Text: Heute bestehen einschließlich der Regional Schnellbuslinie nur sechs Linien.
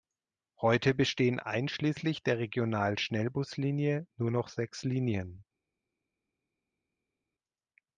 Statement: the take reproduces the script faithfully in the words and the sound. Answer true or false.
false